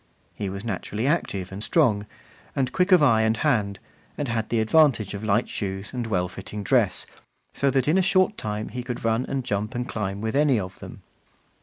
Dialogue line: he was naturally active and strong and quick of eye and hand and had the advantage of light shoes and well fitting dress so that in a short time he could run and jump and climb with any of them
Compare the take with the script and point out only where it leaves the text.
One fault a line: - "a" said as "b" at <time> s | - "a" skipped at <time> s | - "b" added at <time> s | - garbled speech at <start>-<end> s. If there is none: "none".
none